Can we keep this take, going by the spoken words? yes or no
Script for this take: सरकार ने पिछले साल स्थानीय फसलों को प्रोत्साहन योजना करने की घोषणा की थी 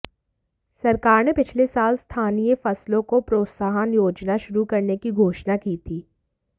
no